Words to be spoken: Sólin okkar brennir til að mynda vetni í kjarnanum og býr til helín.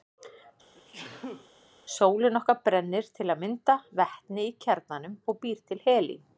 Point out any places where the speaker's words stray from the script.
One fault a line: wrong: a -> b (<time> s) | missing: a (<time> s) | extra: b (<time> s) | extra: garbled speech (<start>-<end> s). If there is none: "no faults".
no faults